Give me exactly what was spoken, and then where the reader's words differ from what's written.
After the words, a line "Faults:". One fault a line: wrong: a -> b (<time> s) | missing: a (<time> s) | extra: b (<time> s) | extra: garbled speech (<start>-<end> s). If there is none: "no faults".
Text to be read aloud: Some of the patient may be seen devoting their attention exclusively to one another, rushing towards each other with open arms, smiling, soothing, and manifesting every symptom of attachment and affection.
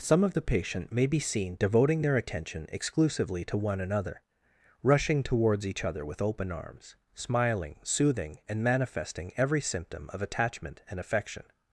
Some of the patient may be seen devoting their attention exclusively to one another, rushing towards each other with open arms, smiling, soothing, and manifesting every symptom of attachment and affection.
Faults:
no faults